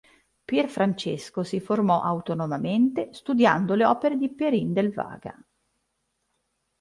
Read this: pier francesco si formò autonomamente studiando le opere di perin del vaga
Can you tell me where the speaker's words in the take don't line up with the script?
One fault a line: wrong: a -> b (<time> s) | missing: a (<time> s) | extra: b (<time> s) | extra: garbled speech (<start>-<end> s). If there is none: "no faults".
no faults